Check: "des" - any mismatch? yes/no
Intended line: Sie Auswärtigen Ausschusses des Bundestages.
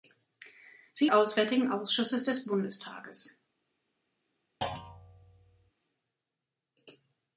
no